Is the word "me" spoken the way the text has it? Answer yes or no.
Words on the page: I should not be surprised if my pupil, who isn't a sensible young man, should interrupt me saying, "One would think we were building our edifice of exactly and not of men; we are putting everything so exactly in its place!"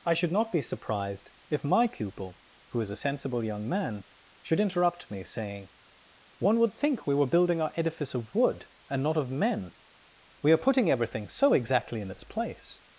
yes